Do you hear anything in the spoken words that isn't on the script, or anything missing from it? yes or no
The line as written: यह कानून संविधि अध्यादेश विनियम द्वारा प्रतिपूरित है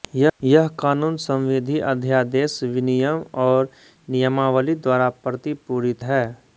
yes